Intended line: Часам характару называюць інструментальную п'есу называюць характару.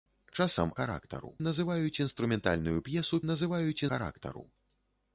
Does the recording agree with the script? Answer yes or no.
yes